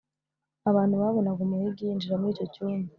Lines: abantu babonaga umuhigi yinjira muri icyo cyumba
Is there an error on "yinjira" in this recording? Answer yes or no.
no